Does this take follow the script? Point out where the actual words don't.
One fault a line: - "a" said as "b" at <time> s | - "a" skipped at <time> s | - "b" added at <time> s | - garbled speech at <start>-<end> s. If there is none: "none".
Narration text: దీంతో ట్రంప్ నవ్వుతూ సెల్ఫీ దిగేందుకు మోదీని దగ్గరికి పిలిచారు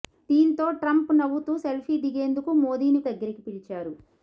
none